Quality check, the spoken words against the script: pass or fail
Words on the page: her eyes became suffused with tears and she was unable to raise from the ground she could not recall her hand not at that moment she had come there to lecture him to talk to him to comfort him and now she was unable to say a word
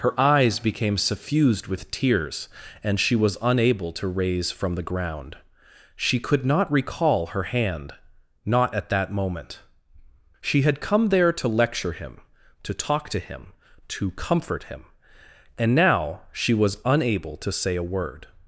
pass